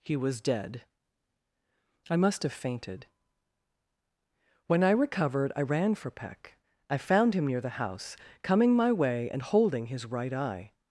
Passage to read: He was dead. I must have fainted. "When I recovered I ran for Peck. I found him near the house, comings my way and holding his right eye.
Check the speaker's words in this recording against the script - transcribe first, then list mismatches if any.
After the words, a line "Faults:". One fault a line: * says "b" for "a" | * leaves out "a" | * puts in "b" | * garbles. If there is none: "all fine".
He was dead. I must have fainted. "When I recovered I ran for Peck. I found him near the house, coming my way and holding his right eye.
Faults:
* says "coming" for "comings"